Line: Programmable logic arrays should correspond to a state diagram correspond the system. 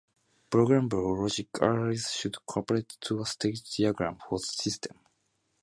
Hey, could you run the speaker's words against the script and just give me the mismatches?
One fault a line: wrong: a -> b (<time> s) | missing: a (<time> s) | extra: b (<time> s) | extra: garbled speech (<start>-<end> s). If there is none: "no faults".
wrong: correspond -> for (4.1 s)